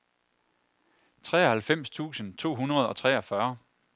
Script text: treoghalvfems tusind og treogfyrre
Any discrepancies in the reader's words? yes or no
yes